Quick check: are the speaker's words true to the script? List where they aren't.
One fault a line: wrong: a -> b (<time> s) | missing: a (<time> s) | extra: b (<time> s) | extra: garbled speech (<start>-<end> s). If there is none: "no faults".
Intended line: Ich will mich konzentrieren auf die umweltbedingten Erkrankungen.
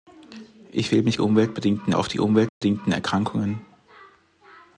wrong: konzentrieren -> umweltbedingten (1.2 s)